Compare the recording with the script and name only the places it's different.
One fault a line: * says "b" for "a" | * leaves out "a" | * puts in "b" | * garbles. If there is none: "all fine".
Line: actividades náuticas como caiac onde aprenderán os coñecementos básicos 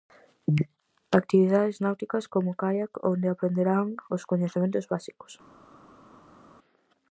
all fine